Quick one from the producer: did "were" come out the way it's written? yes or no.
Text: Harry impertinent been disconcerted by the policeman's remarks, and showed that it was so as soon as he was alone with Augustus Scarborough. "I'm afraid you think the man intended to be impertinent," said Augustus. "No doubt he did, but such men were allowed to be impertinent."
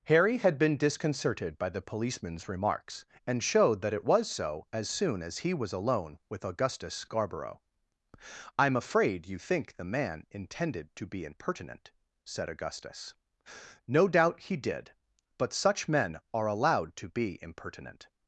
no